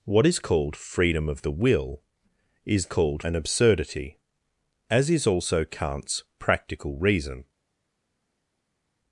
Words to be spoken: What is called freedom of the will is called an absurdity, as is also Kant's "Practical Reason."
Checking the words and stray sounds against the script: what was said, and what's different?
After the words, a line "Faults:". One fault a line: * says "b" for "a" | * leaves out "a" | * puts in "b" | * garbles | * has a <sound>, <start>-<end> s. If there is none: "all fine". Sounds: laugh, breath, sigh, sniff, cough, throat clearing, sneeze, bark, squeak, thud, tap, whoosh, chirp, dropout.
What is called freedom of the will is called an absurdity, as is also Kant's "Practical Reason."
Faults:
all fine